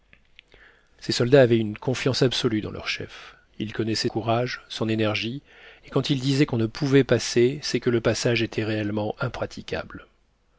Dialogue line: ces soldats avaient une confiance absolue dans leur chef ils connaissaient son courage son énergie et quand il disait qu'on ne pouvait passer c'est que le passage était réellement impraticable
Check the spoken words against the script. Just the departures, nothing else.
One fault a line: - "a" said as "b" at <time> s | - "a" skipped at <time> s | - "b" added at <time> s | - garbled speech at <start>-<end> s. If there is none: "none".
- "son" skipped at 4.1 s